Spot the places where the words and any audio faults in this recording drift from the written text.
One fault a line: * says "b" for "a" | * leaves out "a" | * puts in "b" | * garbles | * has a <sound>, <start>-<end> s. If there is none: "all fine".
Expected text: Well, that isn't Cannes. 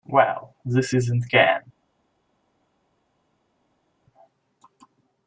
* says "this" for "that"